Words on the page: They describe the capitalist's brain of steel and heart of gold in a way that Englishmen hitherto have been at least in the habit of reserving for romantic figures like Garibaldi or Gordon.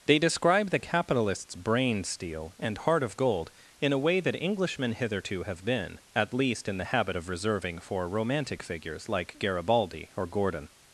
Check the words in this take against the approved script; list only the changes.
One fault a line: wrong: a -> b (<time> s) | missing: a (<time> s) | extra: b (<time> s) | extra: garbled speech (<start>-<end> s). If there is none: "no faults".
missing: of (2.0 s)